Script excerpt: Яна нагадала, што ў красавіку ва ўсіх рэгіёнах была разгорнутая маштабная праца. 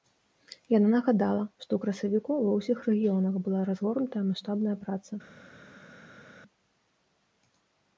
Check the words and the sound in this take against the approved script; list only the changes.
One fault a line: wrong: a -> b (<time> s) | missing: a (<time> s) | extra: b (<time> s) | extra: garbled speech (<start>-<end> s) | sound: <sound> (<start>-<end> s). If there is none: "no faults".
no faults